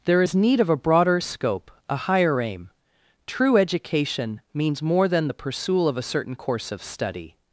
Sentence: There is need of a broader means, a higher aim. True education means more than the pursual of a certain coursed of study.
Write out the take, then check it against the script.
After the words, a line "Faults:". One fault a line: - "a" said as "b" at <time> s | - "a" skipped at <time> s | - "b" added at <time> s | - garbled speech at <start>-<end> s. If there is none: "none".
There is need of a broader scope, a higher aim. True education means more than the pursual of a certain course of study.
Faults:
- "means" said as "scope" at 1.2 s
- "coursed" said as "course" at 6.3 s